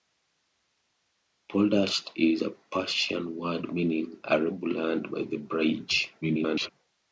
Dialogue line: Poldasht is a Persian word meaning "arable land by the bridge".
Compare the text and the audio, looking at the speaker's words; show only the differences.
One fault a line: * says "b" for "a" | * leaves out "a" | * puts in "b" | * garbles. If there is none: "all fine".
* garbles